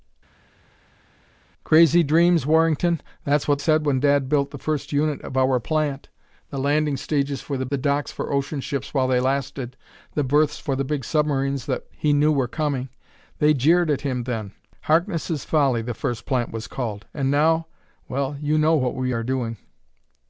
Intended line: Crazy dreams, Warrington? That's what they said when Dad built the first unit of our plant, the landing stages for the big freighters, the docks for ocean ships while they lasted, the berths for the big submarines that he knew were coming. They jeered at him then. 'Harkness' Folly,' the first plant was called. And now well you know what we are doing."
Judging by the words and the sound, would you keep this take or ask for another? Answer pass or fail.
fail